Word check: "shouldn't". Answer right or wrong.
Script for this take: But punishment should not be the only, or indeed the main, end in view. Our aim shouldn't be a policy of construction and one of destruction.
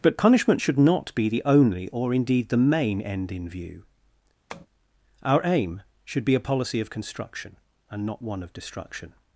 wrong